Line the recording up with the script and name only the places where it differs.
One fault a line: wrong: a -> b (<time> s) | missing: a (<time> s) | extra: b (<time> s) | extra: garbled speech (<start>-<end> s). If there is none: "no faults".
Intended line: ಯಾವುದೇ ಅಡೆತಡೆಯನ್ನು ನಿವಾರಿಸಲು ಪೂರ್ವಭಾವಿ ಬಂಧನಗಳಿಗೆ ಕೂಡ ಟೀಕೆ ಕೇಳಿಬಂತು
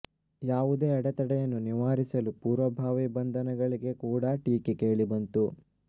no faults